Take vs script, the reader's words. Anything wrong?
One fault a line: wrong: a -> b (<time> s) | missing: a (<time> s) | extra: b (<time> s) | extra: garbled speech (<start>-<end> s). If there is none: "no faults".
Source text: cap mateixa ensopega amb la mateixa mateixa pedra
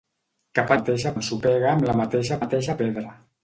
no faults